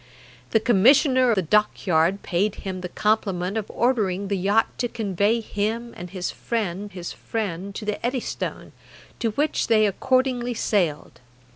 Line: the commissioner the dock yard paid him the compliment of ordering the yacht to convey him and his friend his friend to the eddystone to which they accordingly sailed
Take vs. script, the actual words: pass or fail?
pass